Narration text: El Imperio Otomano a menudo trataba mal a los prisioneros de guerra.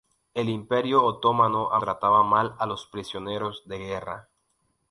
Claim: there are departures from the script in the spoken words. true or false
true